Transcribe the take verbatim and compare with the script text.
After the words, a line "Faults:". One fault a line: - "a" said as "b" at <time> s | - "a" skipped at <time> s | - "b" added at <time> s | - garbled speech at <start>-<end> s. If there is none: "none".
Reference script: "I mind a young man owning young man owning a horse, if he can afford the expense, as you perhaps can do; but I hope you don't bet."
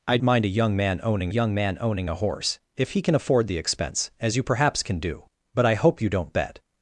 "I mind a young man owning young man owning a horse, if he can afford the expense, as you perhaps can do; but I hope you don't bet."
Faults:
none